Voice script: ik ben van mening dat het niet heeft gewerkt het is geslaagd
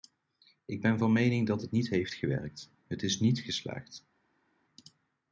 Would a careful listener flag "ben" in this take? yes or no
no